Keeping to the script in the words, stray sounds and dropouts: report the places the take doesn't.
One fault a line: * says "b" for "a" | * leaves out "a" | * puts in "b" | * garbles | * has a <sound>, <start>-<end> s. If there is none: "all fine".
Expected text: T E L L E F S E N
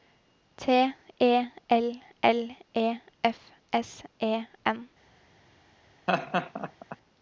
* has a laugh, 6.1-7.0 s